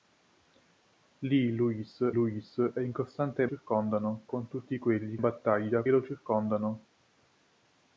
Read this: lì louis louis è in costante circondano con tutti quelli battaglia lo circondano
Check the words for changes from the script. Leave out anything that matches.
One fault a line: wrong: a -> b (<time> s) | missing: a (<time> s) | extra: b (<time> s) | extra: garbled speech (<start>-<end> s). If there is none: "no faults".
no faults